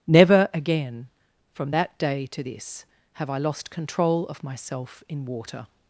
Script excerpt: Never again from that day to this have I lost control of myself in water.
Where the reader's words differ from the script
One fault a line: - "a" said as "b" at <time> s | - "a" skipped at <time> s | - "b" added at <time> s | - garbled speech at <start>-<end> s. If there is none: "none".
none